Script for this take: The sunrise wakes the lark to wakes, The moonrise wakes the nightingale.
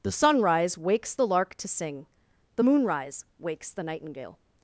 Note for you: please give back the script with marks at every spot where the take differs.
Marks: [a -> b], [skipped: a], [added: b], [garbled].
The sunrise wakes the lark to [wakes, -> sing] The moonrise wakes the nightingale.